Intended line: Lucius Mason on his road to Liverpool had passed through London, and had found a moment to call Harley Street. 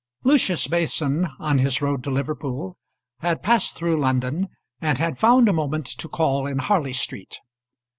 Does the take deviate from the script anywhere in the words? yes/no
yes